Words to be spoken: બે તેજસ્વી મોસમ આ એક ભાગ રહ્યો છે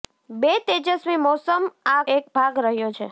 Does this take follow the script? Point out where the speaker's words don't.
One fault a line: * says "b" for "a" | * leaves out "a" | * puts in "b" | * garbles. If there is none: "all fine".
all fine